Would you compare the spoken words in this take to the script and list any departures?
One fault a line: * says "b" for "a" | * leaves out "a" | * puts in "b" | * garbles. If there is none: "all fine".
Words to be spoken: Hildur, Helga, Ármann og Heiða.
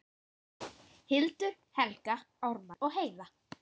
all fine